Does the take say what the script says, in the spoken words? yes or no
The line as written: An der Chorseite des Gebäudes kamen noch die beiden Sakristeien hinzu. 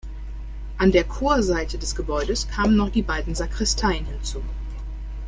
yes